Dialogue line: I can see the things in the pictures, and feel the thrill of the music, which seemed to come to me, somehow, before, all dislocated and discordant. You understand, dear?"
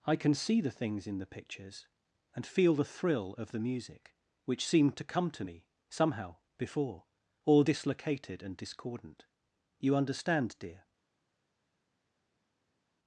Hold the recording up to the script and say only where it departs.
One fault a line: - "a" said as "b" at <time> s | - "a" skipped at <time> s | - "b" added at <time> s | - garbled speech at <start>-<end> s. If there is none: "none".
none